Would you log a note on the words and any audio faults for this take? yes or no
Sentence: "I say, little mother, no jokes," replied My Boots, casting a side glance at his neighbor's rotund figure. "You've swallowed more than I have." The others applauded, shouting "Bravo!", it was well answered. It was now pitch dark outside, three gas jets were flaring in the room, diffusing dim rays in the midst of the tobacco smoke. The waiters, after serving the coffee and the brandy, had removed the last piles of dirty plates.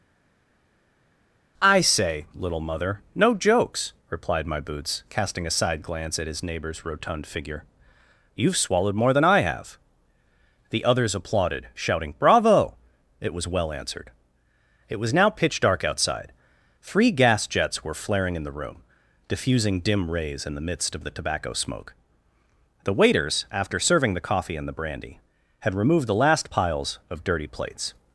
no